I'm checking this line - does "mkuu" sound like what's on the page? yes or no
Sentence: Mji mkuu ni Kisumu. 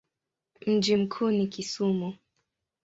yes